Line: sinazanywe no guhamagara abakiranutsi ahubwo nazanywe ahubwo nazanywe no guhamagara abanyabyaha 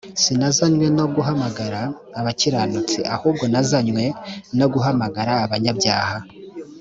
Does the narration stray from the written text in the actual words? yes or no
yes